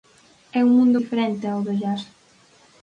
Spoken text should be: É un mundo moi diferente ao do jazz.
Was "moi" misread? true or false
true